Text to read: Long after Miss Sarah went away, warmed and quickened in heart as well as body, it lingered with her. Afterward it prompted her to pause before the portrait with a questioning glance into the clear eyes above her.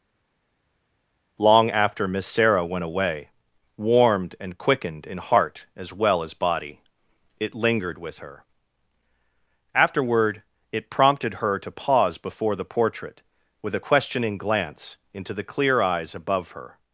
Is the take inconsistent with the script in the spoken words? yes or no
no